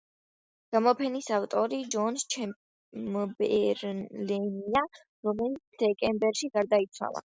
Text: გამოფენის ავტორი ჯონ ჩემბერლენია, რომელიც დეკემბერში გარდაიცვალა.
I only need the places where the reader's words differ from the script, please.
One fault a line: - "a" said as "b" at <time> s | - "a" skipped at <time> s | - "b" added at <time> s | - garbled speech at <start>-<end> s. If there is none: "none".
none